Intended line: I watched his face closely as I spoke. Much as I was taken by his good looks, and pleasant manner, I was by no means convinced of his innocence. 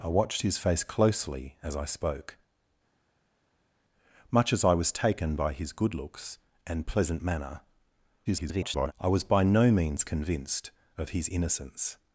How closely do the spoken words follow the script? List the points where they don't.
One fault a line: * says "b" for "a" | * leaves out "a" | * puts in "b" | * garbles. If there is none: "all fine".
* garbles